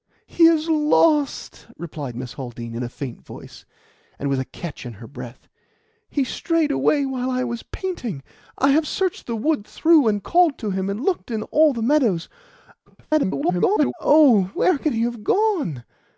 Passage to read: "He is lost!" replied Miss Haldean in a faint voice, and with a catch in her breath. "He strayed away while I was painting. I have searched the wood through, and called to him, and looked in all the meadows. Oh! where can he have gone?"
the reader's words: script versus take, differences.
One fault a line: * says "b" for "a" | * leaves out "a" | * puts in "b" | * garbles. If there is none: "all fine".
* garbles